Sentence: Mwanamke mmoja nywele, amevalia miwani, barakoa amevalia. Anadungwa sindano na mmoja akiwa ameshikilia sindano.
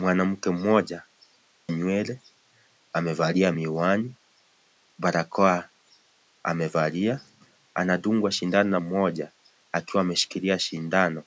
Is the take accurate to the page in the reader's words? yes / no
yes